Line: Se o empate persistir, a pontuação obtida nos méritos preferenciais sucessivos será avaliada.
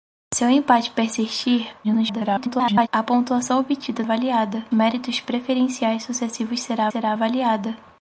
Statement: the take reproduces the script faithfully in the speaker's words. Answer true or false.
false